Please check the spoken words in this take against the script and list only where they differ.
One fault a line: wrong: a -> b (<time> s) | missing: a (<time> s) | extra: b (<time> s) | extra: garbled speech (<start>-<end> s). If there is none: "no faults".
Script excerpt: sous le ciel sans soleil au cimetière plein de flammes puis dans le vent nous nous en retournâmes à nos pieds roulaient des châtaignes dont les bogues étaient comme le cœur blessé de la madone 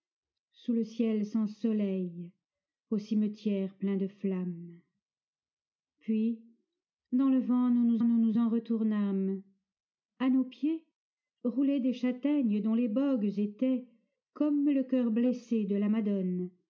extra: nous nous (8.0 s)